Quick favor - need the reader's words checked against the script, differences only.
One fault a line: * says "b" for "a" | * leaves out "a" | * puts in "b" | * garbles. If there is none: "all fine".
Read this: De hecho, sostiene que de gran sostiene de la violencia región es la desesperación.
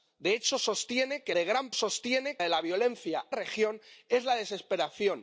all fine